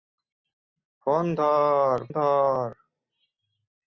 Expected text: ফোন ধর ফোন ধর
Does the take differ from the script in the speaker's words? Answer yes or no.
yes